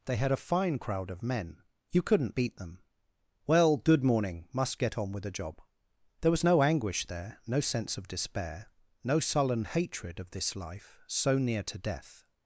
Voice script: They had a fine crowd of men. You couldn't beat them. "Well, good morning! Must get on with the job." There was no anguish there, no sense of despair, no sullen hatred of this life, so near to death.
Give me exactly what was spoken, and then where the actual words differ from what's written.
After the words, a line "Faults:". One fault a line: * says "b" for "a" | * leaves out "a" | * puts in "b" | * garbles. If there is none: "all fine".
They had a fine crowd of men. You couldn't beat them. "Well, good morning! Must get on with the job." There was no anguish there, no sense of despair, no sullen hatred of this life, so near to death.
Faults:
all fine